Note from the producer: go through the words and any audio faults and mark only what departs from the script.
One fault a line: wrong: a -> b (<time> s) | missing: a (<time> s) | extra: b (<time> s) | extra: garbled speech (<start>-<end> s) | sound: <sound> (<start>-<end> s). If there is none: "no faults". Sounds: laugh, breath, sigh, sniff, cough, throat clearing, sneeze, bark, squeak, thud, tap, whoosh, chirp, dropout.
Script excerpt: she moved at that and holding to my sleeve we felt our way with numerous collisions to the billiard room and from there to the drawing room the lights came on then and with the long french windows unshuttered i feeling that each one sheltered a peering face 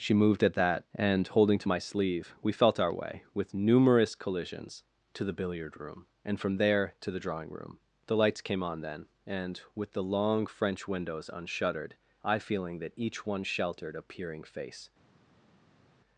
no faults